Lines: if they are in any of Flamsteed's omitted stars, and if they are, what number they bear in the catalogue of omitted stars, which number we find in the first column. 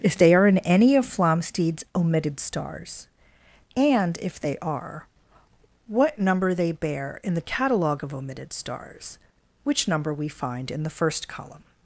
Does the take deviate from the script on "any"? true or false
false